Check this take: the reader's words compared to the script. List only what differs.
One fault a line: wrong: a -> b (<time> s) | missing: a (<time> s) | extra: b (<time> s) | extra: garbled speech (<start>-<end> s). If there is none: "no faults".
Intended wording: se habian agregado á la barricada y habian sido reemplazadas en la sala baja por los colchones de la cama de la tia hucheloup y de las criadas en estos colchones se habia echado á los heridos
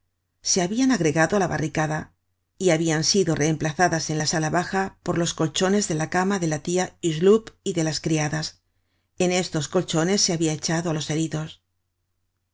no faults